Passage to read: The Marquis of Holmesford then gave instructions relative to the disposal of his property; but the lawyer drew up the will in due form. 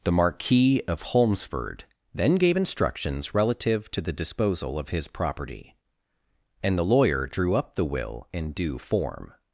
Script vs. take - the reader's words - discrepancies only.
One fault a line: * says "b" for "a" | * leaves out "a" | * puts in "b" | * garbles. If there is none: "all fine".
* says "and" for "but"